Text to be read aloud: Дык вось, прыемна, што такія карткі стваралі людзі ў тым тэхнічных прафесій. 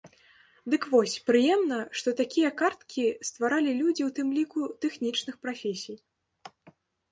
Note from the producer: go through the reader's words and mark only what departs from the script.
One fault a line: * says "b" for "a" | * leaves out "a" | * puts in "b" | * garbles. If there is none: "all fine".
* puts in "ліку"